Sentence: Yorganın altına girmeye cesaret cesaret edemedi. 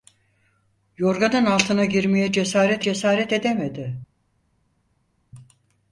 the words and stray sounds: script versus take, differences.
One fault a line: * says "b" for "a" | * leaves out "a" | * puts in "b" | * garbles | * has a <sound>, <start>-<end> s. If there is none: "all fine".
all fine